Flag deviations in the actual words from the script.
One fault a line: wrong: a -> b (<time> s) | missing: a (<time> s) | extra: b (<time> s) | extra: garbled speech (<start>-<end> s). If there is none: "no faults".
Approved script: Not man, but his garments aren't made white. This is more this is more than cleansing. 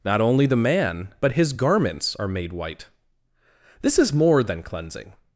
extra: only the (0.2 s)
wrong: aren't -> are (2.1 s)
missing: this is more (4.4 s)